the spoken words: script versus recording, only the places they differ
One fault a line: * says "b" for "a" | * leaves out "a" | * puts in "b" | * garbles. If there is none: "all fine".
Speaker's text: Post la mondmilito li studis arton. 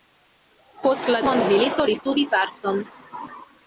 all fine